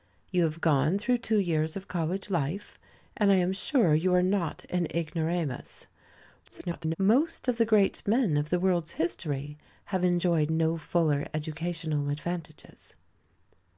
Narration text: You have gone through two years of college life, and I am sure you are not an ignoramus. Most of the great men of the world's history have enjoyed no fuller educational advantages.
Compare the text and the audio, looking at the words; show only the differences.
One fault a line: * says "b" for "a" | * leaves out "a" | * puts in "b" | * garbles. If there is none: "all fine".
* garbles